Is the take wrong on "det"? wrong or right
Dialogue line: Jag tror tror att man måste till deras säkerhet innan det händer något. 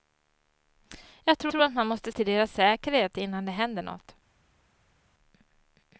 right